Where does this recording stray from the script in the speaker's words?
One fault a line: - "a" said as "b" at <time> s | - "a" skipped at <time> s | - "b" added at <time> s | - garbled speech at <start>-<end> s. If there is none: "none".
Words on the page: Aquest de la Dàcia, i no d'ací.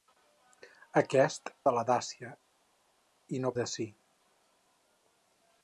none